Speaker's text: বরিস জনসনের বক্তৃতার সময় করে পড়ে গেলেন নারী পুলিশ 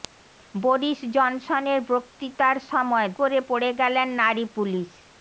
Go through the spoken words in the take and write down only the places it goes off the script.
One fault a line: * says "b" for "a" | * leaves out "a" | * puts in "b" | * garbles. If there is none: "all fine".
all fine